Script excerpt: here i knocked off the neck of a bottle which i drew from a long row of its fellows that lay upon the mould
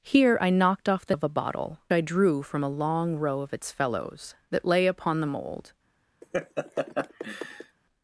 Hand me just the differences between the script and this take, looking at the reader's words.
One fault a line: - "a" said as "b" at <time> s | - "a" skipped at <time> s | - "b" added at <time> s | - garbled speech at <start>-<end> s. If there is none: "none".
- "neck" skipped at 1.1 s
- "which" skipped at 1.8 s